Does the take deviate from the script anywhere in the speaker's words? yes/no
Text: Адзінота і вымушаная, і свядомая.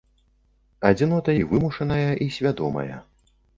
no